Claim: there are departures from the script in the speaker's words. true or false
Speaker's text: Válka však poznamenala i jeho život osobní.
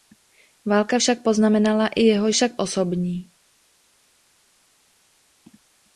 true